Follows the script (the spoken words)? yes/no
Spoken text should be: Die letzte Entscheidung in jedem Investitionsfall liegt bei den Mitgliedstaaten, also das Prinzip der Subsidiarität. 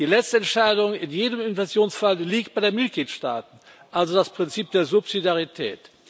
yes